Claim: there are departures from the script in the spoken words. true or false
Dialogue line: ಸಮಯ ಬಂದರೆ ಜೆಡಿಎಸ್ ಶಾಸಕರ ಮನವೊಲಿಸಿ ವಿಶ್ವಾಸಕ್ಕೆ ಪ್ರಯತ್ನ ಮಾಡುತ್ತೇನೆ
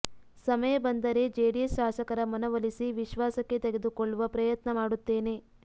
true